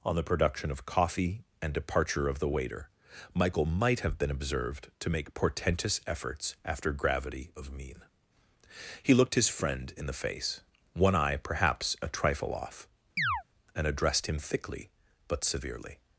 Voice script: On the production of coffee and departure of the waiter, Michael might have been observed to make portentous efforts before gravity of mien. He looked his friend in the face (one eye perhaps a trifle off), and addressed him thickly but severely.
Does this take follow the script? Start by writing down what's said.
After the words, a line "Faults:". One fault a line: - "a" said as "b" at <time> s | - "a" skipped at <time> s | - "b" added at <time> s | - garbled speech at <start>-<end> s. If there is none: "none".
On the production of coffee and departure of the waiter, Michael might have been observed to make portentous efforts after gravity of mien. He looked his friend in the face (one eye perhaps a trifle off), and addressed him thickly but severely.
Faults:
- "before" said as "after" at 6.6 s